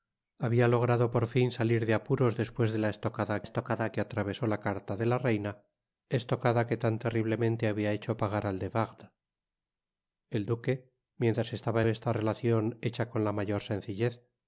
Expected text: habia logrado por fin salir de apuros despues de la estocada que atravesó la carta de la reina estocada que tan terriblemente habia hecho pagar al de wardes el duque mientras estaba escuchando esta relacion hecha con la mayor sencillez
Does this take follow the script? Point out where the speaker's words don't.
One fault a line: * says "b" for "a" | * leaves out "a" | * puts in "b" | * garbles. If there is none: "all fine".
* puts in "estocada"
* leaves out "escuchando"